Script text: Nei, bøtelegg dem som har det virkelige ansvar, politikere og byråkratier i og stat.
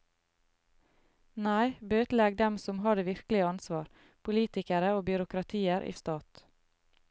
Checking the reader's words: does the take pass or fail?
pass